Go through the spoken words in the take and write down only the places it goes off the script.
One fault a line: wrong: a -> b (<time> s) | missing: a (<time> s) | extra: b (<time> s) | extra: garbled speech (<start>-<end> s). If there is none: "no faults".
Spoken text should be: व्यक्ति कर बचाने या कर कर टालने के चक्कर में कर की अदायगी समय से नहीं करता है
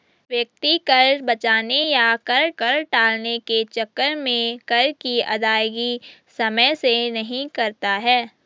no faults